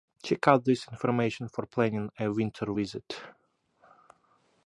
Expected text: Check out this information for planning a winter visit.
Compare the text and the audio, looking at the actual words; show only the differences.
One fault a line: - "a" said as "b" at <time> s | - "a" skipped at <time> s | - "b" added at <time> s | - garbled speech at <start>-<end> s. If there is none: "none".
none